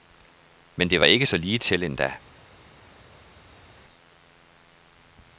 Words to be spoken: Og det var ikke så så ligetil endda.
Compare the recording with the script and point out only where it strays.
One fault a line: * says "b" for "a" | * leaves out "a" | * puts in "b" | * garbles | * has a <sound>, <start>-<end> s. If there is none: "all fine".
* says "Men" for "Og"
* leaves out "så"